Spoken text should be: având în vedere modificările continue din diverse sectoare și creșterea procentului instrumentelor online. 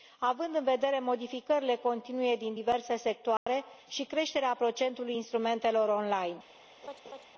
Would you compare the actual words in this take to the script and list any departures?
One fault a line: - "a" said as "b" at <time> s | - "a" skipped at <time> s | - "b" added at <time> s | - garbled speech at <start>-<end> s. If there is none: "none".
none